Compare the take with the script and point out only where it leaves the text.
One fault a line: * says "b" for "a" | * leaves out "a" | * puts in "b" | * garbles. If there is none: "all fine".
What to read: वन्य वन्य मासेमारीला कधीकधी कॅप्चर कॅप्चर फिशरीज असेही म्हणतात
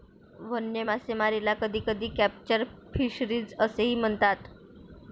* leaves out "वन्य"
* leaves out "कॅप्चर"